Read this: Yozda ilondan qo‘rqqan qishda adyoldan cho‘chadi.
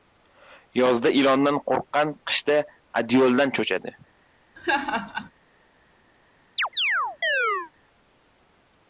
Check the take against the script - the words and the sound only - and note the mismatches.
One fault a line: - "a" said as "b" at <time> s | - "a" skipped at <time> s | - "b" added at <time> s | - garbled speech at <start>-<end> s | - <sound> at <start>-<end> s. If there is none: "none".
- laugh at 4.6-5.3 s
- chirp at 6.6-7.7 s